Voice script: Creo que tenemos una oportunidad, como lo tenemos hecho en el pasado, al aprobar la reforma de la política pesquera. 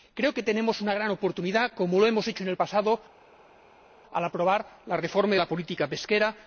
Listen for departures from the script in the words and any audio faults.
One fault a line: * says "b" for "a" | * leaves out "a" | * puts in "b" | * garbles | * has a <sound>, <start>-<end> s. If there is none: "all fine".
* puts in "gran"
* says "hemos" for "tenemos"